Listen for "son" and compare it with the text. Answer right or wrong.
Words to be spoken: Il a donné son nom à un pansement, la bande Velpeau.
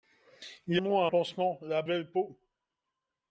wrong